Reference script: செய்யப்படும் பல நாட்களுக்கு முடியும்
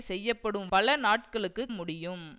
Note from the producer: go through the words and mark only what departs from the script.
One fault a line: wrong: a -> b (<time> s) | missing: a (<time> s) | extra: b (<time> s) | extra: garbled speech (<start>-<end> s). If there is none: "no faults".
no faults